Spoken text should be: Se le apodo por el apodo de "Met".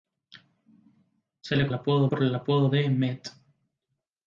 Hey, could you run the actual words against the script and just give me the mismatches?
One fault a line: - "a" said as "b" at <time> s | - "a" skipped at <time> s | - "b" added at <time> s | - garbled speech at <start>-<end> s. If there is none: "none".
none